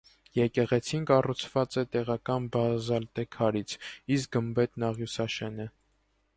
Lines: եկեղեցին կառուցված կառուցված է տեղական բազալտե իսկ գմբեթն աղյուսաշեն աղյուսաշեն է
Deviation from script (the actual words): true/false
true